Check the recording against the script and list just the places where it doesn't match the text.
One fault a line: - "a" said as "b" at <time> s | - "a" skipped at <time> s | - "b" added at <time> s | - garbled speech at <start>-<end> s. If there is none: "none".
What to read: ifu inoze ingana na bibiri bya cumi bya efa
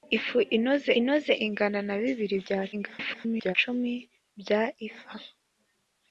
- "inoze" added at 1.0 s
- garbled speech at 2.7-3.5 s